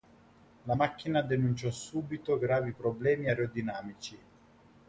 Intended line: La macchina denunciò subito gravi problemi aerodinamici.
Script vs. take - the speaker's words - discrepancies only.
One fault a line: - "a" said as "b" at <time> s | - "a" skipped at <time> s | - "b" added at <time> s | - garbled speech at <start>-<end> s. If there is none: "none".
none